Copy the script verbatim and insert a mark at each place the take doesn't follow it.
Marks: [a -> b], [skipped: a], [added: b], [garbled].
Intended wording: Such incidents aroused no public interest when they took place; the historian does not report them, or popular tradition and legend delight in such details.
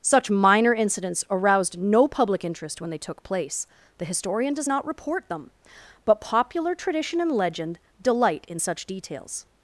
Such [added: minor] incidents aroused no public interest when they took place; the historian does not report them, [or -> but] popular tradition and legend delight in such details.